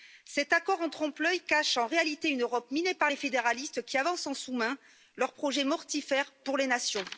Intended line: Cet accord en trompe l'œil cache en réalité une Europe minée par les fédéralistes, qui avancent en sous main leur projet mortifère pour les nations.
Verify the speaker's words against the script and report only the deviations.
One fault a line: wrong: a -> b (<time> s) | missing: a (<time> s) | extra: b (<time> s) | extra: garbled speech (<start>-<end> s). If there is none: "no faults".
no faults